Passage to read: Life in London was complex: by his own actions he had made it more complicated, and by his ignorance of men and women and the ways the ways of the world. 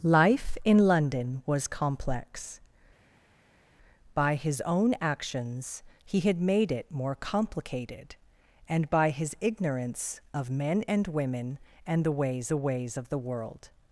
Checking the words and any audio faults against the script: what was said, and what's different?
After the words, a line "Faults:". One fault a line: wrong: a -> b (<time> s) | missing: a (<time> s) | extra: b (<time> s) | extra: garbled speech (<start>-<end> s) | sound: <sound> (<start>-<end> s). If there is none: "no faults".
Life in London was complex: by his own actions he had made it more complicated, and by his ignorance of men and women and the ways the ways of the world.
Faults:
no faults